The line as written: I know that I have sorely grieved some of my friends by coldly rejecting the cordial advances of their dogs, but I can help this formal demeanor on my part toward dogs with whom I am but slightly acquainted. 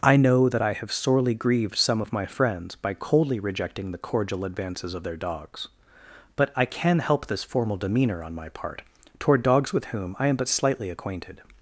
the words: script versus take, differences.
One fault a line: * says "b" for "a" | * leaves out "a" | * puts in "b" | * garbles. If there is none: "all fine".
all fine